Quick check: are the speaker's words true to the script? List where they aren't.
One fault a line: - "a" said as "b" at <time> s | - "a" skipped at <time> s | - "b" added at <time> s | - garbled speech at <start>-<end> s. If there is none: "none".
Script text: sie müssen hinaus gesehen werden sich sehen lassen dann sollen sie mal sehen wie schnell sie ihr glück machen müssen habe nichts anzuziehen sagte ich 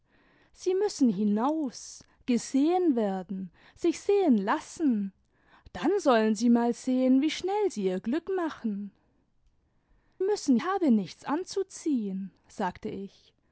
none